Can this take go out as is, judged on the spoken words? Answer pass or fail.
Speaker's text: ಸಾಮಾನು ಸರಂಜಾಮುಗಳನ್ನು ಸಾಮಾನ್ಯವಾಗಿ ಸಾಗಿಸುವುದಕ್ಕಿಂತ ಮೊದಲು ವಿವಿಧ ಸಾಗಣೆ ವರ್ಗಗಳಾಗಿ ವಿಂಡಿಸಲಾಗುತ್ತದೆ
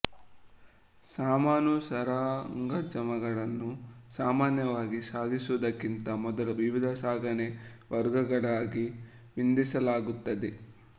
pass